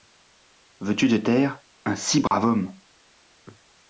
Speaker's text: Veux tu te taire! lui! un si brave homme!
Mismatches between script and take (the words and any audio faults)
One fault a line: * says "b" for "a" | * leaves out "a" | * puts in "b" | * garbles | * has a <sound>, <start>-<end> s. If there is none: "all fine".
* leaves out "lui"
* has a dropout, 2.3-2.3 s